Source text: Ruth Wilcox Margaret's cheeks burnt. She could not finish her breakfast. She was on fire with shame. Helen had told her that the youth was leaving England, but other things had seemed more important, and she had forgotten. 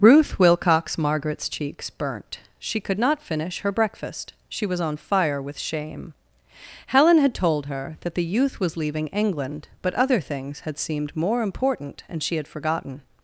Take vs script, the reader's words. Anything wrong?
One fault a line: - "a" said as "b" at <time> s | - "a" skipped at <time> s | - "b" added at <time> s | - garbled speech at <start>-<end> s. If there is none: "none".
none